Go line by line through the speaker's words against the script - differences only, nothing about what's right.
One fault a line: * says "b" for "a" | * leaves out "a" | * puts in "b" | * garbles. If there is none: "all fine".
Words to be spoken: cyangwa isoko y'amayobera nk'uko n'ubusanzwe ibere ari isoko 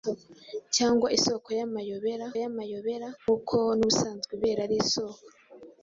* puts in "y'amayobera"